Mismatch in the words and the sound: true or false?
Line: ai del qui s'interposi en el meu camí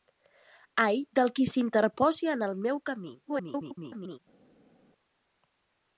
true